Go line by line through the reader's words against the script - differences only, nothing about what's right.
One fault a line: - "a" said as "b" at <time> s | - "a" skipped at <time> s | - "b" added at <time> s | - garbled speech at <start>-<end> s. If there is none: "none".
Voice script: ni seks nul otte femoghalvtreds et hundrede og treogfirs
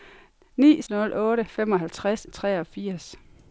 - "seks" skipped at 0.8 s
- "et hundrede" skipped at 2.3 s